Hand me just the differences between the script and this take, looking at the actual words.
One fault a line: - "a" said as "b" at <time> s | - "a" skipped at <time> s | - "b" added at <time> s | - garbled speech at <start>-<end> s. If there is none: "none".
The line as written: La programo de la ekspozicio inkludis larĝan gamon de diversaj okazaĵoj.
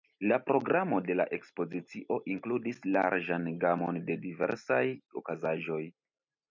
none